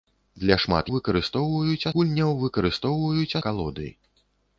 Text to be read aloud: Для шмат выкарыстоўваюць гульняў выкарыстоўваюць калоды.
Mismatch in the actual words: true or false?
false